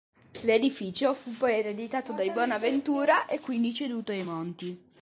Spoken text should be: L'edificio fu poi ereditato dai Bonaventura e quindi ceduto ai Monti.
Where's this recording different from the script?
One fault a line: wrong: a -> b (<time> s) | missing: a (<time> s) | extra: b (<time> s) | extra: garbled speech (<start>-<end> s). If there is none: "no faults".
no faults